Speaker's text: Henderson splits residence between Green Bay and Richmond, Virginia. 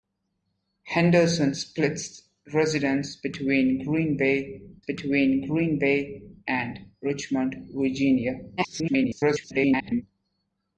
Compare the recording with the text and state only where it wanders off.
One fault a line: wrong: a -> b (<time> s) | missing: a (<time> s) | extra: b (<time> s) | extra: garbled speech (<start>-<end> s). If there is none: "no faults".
extra: between Green Bay (4.8 s)
extra: garbled speech (8.6-10.0 s)